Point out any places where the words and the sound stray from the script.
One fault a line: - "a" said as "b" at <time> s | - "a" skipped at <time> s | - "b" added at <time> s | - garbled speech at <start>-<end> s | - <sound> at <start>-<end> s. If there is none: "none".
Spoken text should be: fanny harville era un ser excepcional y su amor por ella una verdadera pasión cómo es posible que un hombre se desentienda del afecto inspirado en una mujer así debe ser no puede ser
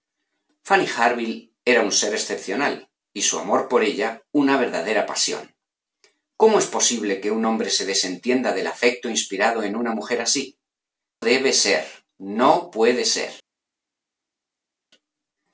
none